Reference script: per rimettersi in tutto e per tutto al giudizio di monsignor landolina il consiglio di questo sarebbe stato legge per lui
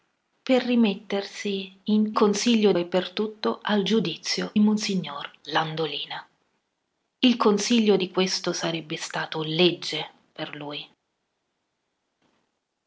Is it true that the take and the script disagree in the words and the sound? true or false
true